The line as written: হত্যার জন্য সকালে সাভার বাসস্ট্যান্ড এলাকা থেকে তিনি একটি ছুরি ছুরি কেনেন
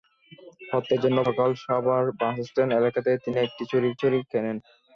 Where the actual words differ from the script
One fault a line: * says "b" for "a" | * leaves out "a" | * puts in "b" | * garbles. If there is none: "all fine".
all fine